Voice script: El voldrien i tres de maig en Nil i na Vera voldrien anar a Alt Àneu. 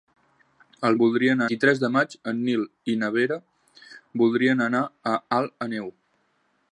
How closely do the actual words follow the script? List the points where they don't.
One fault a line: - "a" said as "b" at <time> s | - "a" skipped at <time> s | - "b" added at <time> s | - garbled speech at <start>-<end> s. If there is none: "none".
none